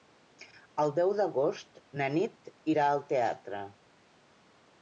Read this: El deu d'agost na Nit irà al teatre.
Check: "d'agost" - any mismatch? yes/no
no